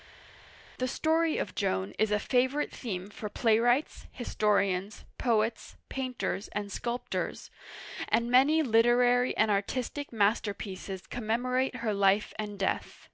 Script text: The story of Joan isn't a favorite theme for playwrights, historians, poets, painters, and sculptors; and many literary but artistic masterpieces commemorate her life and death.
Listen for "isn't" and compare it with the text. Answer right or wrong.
wrong